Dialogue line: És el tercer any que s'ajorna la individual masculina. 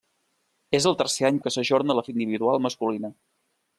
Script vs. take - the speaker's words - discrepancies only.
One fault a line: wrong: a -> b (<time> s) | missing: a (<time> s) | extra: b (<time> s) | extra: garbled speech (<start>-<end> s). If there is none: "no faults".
no faults